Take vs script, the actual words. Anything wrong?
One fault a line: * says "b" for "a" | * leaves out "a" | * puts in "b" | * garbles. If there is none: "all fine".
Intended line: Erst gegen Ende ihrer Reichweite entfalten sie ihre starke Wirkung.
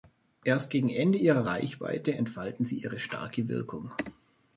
all fine